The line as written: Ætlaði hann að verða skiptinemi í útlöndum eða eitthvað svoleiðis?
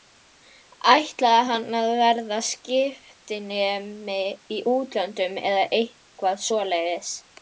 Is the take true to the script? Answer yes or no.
yes